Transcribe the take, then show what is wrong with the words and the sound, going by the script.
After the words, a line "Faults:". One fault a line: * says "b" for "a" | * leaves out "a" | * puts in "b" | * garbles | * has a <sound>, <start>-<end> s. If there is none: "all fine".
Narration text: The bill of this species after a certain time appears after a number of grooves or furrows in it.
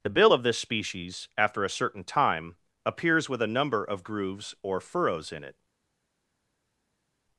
The bill of this species after a certain time appears with a number of grooves or furrows in it.
Faults:
* says "with" for "after"